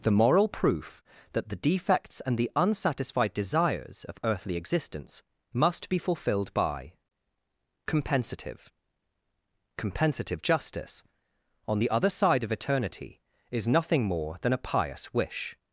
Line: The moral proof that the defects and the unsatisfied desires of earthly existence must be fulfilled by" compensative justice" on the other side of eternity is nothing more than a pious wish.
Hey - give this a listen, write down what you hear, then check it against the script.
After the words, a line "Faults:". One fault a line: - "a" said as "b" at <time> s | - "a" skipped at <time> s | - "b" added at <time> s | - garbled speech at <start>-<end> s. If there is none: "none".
The moral proof that the defects and the unsatisfied desires of earthly existence must be fulfilled by" compensative compensative justice" on the other side of eternity is nothing more than a pious wish.
Faults:
- "compensative" added at 9.8 s